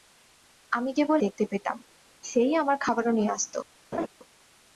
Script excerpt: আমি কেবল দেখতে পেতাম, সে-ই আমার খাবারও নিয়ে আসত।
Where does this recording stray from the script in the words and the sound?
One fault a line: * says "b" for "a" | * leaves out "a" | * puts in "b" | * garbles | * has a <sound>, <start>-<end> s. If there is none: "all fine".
* has a laugh, 3.9-4.1 s